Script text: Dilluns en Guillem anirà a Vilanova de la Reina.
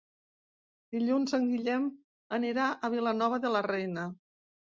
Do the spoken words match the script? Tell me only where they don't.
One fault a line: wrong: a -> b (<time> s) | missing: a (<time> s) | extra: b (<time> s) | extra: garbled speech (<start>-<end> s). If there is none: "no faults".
no faults